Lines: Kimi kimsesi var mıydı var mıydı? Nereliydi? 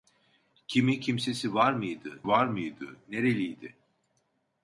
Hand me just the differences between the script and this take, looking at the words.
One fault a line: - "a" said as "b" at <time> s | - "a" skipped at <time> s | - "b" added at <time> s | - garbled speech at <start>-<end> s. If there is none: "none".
none